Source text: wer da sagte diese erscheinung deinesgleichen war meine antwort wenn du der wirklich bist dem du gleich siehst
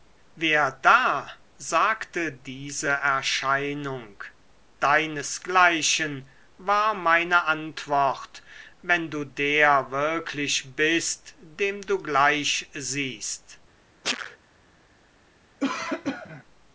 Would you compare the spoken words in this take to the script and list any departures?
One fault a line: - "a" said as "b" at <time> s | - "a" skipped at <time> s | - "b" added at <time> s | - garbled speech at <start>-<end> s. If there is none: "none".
none